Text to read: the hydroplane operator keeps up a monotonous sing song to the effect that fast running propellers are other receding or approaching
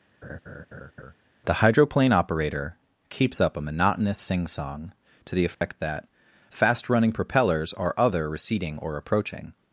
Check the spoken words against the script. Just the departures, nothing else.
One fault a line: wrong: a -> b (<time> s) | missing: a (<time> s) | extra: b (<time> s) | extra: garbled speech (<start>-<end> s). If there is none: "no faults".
no faults